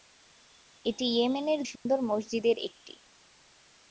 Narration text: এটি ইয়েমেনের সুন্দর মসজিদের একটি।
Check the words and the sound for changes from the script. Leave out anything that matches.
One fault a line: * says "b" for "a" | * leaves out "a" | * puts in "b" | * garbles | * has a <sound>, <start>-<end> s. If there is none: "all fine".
* has a dropout, 1.8-1.9 s